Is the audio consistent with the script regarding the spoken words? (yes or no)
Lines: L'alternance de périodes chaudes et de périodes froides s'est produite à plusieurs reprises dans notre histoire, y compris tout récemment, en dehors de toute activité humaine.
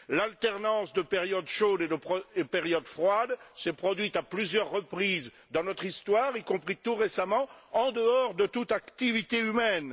yes